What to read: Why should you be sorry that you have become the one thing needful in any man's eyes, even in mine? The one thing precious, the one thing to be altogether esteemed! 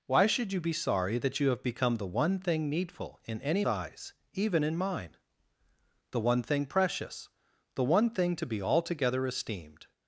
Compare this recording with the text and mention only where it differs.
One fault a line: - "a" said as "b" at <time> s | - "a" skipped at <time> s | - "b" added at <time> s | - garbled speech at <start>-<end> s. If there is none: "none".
- "man's" skipped at 3.6 s